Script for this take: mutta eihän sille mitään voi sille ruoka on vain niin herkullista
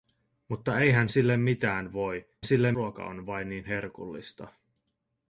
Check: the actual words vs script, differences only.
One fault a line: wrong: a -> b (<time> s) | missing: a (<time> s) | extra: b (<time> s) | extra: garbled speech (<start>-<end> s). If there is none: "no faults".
no faults